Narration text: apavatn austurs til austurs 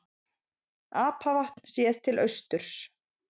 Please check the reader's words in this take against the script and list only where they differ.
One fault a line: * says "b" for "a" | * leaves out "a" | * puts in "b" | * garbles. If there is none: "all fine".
* says "séð" for "austurs"